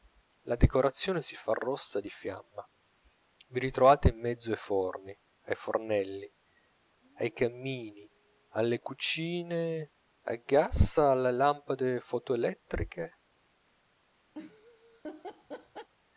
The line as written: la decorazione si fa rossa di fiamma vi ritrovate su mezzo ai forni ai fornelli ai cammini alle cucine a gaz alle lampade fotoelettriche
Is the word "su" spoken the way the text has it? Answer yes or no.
no